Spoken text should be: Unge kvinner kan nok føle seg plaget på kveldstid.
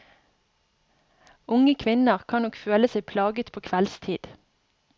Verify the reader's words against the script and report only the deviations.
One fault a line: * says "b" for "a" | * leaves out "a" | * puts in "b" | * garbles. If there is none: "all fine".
all fine